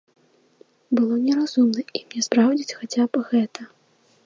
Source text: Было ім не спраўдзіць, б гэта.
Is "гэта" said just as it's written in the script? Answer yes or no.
yes